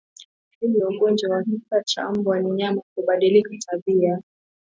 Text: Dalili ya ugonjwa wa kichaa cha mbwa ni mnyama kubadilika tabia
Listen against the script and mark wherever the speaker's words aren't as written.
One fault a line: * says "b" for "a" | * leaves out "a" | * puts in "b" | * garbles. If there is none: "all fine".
all fine